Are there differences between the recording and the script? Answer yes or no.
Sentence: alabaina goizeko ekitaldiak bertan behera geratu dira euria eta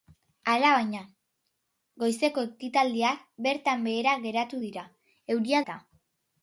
no